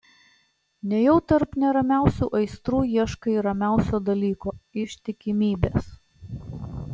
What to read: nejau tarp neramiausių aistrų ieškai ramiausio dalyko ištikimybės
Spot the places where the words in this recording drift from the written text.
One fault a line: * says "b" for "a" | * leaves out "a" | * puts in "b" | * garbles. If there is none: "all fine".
all fine